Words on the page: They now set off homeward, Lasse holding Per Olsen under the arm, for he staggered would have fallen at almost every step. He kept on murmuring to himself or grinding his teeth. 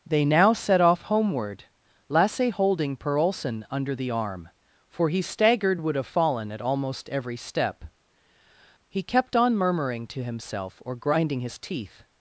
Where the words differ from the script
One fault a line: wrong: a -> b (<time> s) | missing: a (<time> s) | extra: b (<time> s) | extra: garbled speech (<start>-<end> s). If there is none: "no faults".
no faults